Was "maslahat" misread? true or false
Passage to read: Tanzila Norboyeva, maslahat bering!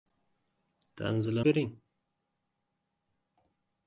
true